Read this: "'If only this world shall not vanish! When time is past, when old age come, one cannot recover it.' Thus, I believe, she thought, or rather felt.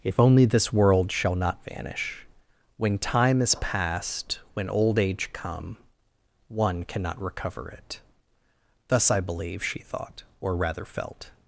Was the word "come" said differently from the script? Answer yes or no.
no